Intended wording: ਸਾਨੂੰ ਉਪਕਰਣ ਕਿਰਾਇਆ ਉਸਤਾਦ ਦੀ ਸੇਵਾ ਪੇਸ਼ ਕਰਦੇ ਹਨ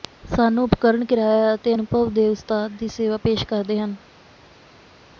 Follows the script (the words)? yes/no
no